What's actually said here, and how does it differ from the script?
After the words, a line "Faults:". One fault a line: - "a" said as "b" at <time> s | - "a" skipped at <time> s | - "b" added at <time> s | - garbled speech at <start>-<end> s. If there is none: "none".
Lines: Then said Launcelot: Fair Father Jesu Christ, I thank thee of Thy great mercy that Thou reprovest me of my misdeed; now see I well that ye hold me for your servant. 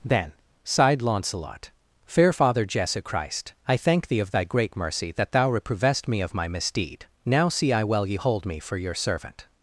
Then sighed Launcelot: Fair Father Jesu Christ, I thank thee of Thy great mercy that Thou reprovest me of my misdeed; now see I well ye hold me for your servant.
Faults:
- "said" said as "sighed" at 0.6 s
- "that" skipped at 8.1 s